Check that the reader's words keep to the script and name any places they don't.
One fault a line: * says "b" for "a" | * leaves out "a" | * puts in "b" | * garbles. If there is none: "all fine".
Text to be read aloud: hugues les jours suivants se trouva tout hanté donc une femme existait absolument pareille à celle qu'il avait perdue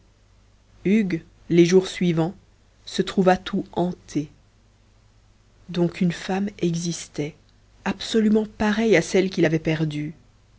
all fine